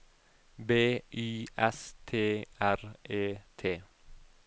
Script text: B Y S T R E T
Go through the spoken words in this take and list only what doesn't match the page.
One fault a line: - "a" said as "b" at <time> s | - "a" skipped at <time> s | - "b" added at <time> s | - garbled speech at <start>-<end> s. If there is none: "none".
none